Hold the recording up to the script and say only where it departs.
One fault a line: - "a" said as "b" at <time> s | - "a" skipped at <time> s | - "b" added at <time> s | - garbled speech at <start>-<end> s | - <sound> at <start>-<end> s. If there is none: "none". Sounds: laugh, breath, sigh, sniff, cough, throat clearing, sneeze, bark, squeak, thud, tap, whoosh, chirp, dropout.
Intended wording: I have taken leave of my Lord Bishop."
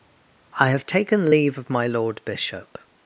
none